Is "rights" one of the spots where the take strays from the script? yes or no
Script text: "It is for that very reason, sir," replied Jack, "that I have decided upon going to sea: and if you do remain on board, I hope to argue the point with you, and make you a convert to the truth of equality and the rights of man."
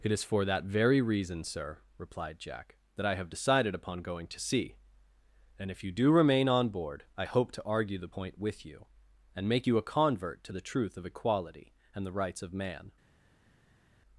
no